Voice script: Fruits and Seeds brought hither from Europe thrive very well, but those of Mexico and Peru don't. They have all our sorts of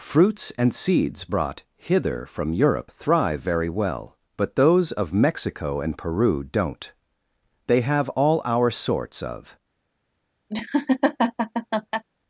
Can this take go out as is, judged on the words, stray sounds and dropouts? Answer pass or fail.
fail